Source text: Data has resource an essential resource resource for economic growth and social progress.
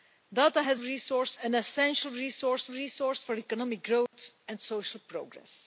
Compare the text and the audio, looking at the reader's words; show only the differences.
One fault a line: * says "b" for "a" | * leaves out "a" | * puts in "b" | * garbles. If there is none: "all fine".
all fine